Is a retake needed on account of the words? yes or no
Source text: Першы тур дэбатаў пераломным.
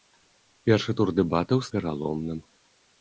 no